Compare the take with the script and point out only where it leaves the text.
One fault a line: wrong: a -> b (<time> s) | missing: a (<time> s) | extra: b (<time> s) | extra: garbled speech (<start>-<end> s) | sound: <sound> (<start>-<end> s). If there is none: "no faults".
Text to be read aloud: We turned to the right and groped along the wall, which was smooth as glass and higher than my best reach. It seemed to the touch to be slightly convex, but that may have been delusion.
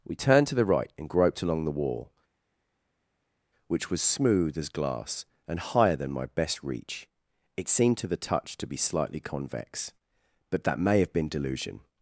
no faults